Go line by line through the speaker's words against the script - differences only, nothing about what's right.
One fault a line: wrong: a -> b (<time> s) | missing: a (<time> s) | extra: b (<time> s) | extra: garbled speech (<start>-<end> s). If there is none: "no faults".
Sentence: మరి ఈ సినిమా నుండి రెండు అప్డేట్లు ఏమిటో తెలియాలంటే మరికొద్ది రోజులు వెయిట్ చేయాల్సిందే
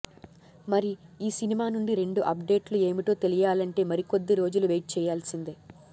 no faults